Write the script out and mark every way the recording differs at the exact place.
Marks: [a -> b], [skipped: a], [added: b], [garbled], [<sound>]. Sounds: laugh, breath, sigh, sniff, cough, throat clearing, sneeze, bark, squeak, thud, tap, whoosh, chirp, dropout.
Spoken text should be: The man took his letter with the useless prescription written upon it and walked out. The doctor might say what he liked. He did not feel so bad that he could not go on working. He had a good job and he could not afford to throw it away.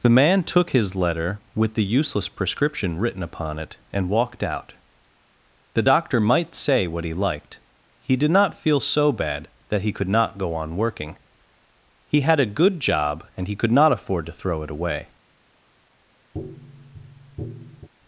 The man took his letter with the useless prescription written upon it and walked out. The doctor might say what he liked. He did not feel so bad that he could not go on working. He had a good job and he could not afford to throw it away. [tap]